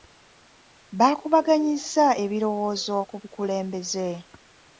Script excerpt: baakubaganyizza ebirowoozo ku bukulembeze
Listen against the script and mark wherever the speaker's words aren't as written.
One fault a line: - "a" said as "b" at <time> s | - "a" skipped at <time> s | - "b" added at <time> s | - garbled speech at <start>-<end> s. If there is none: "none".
none